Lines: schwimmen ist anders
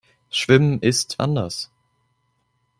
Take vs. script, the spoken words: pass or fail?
pass